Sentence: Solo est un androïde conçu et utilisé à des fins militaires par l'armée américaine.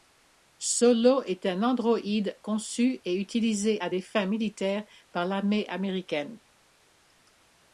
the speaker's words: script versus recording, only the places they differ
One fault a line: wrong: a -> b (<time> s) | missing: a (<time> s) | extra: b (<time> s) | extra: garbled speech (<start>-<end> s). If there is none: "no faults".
no faults